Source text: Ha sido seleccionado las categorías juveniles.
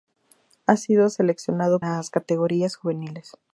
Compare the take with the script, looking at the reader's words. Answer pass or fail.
pass